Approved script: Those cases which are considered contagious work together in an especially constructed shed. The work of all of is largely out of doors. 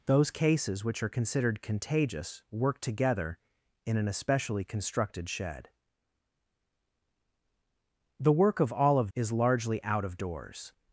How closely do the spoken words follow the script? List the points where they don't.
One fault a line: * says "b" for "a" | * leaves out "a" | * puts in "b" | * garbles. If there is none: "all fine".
all fine